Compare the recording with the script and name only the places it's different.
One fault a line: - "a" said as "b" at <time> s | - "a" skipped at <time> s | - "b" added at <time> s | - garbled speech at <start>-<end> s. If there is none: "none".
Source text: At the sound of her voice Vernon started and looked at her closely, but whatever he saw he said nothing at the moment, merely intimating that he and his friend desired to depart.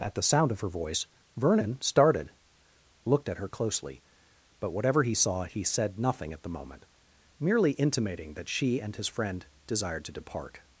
- "and" skipped at 2.3 s
- "he" said as "she" at 8.5 s